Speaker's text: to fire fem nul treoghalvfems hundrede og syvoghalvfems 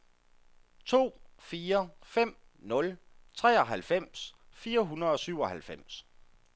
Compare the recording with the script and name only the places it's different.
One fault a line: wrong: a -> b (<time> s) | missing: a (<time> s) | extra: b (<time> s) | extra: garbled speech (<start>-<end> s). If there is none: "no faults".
extra: fire (4.5 s)